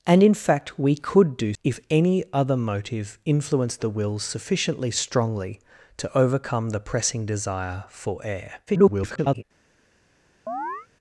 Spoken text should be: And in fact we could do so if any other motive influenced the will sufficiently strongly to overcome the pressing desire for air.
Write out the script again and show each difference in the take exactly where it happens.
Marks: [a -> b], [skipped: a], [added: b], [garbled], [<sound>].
And in fact we could do [skipped: so] if any other motive influenced the will sufficiently strongly to overcome the pressing desire for air. [garbled] [chirp]